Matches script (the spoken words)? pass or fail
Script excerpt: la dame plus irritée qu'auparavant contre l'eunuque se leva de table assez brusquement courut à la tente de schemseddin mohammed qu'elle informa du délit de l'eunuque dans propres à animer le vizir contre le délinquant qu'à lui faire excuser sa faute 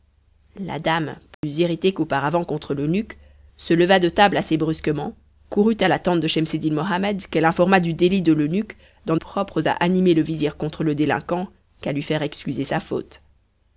pass